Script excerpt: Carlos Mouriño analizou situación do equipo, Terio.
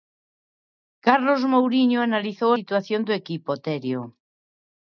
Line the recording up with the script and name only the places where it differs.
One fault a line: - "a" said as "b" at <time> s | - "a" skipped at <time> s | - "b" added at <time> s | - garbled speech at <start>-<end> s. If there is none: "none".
none